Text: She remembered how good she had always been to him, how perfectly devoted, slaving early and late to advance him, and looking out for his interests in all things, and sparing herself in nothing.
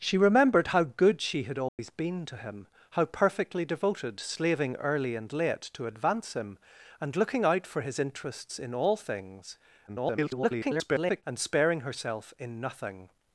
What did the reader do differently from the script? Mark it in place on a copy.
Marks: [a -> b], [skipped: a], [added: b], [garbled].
She remembered how good she had always been to him, how perfectly devoted, slaving early and late to advance him, and looking out for his interests in all things, [garbled] and sparing herself in nothing.